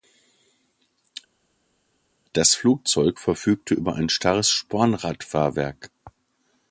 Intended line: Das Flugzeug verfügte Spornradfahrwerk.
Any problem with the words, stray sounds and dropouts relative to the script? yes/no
yes